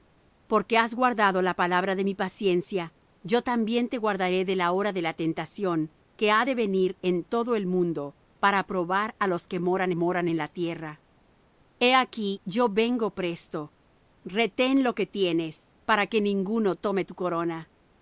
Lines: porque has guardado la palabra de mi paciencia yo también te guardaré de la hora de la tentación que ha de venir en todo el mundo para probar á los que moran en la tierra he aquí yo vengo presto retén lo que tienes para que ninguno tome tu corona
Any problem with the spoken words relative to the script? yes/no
yes